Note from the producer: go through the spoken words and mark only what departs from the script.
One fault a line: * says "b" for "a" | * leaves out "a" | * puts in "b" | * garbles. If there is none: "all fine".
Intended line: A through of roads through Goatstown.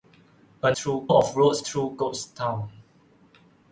all fine